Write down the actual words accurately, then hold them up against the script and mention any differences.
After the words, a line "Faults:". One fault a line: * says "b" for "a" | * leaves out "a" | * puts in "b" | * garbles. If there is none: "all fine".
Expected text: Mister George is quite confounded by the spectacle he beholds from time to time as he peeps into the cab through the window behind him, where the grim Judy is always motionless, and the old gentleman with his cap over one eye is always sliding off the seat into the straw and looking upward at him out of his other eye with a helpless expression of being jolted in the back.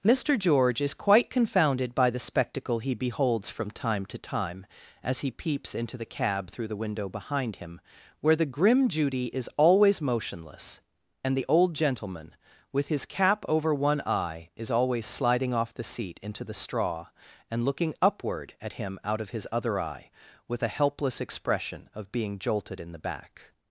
Mister George is quite confounded by the spectacle he beholds from time to time as he peeps into the cab through the window behind him, where the grim Judy is always motionless, and the old gentleman with his cap over one eye is always sliding off the seat into the straw and looking upward at him out of his other eye with a helpless expression of being jolted in the back.
Faults:
all fine